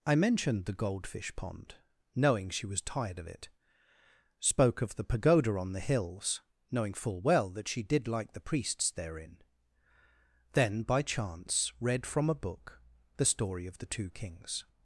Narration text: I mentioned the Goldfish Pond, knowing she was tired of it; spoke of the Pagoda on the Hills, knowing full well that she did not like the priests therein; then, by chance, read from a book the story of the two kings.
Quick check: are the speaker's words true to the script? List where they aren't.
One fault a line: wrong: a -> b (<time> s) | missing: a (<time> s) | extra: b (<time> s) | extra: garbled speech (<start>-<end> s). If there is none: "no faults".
missing: not (8.1 s)